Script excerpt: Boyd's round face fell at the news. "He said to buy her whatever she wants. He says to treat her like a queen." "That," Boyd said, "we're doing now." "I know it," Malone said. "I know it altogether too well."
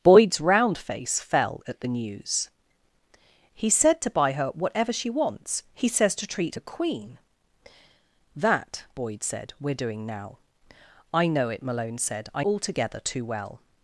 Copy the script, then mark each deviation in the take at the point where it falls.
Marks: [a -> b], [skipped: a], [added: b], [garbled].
Boyd's round face fell at the news. "He said to buy her whatever she wants. He says to treat [skipped: her like] a queen." "That," Boyd said, "we're doing now." "I know it," Malone said. "I [skipped: know it] altogether too well."